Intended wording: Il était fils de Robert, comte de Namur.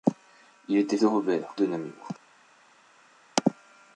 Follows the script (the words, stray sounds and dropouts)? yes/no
no